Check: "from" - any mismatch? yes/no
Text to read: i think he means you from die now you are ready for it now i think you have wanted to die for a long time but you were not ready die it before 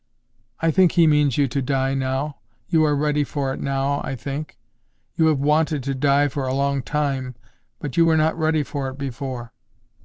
yes